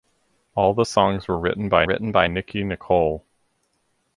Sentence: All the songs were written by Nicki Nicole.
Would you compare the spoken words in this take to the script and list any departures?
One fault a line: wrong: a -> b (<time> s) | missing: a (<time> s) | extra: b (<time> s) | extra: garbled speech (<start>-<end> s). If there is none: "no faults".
extra: written by (1.8 s)